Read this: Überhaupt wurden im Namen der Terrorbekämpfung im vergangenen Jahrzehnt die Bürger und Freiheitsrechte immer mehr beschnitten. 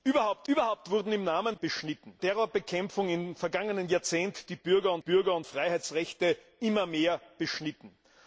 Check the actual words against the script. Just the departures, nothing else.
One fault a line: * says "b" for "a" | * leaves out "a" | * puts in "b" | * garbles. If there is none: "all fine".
* puts in "überhaupt"
* says "beschnitten" for "der"
* puts in "Bürger und"